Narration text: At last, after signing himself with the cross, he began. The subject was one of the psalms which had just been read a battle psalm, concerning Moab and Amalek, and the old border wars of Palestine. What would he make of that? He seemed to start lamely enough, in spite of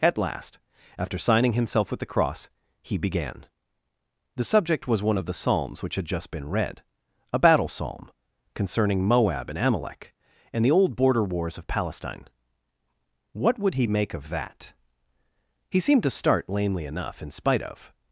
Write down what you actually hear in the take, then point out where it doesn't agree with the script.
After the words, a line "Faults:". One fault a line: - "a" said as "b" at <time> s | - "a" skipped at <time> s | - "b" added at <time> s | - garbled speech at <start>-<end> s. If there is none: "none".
At last, after signing himself with the cross, he began. The subject was one of the psalms which had just been read a battle psalm, concerning Moab and Amalek, and the old border wars of Palestine. What would he make of that? He seemed to start lamely enough, in spite of
Faults:
none